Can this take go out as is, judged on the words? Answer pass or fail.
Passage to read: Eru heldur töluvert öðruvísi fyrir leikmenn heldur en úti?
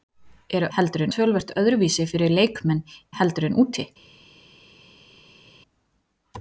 pass